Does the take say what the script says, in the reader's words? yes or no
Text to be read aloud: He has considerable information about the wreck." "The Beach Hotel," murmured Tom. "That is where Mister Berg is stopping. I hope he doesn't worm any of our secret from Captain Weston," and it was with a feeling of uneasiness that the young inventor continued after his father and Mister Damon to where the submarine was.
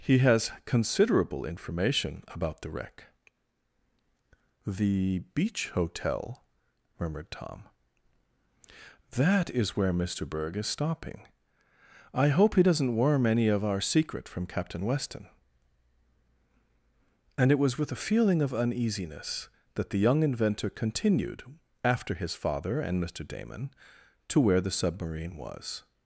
yes